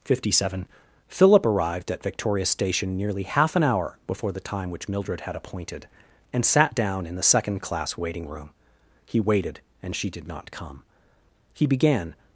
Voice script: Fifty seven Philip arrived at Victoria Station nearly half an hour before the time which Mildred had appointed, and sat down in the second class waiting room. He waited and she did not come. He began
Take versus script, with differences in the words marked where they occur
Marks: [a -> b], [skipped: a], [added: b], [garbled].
Fifty seven Philip arrived at Victoria Station nearly half an hour before the time which Mildred had appointed, and sat down in the second class waiting room. He waited and she did not come. He began